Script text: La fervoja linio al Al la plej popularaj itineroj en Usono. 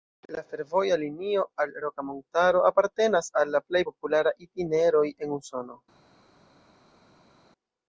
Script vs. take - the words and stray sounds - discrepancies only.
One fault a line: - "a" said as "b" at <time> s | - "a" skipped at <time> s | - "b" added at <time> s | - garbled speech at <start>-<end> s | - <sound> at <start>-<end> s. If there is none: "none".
- "Roka Montaro apartenas" added at 1.8 s